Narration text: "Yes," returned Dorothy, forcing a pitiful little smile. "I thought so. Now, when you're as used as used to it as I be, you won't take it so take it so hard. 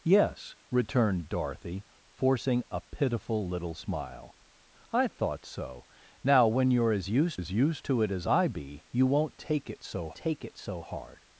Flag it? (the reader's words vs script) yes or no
no